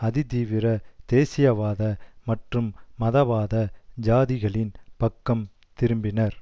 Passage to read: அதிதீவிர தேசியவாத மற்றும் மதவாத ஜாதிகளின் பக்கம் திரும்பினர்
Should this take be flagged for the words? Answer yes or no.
no